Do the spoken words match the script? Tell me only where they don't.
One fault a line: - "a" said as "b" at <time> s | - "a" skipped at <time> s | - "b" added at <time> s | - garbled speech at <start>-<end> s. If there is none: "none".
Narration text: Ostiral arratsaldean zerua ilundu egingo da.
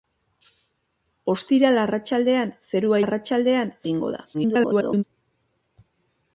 - "ilundu" said as "arratsaldean" at 3.0 s
- garbled speech at 4.3-5.0 s